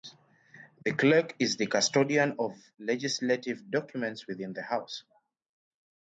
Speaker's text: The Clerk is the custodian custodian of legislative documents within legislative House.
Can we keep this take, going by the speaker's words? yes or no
no